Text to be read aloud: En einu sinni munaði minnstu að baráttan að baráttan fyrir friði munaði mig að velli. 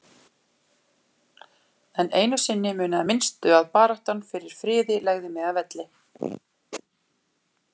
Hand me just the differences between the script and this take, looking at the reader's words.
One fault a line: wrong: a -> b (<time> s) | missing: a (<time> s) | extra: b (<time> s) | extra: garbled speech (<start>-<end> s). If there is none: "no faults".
missing: að baráttan (4.2 s)
wrong: munaði -> legði (5.1 s)